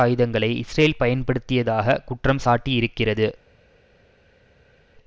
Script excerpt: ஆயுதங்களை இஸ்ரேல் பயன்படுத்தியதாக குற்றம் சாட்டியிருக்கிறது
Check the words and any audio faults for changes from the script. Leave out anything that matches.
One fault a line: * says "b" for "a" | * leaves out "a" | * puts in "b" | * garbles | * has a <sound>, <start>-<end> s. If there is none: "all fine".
all fine